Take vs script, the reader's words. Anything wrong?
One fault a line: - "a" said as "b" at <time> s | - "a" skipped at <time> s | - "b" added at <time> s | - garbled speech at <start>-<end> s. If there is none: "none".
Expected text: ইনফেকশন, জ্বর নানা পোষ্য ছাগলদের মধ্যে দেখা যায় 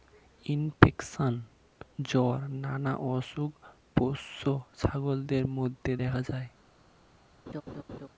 - "অসুখ" added at 3.1 s